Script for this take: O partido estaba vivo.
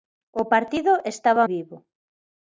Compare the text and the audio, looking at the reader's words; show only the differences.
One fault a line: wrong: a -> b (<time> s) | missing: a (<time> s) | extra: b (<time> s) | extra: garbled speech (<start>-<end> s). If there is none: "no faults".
no faults